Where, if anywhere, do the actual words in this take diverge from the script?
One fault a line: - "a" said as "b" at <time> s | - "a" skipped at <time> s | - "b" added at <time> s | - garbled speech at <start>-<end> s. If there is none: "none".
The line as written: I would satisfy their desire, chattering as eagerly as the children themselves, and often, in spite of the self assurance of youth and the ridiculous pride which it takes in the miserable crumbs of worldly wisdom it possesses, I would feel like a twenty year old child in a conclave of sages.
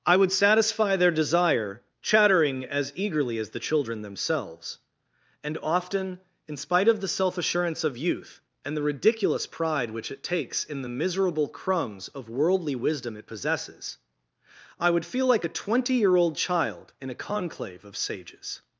none